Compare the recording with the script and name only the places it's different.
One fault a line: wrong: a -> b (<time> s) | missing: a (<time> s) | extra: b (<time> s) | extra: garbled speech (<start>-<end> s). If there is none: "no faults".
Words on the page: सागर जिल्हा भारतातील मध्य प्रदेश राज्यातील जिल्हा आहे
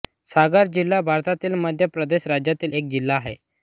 extra: एक (2.7 s)